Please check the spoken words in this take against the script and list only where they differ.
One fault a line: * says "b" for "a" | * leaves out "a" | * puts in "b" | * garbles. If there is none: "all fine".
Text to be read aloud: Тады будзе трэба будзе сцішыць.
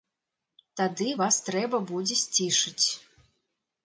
* says "вас" for "будзе"